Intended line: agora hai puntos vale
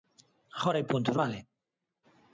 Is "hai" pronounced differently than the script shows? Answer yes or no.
no